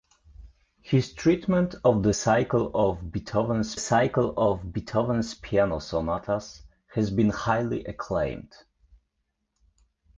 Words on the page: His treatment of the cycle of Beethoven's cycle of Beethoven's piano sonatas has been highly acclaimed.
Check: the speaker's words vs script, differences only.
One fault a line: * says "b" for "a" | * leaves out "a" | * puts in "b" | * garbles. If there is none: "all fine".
all fine